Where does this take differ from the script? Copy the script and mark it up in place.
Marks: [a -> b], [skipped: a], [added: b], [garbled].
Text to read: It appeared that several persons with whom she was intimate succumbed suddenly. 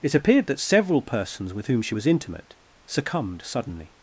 It appeared that several persons with whom she was intimate succumbed suddenly.